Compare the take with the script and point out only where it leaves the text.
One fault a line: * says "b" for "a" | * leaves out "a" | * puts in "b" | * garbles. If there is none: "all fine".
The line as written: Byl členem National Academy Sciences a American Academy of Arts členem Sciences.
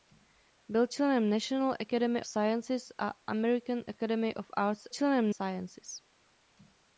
all fine